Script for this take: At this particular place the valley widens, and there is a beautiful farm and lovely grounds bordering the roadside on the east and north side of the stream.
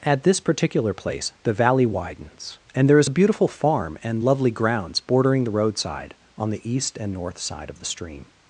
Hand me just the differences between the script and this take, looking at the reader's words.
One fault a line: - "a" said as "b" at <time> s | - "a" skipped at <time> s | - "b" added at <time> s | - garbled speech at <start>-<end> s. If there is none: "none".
none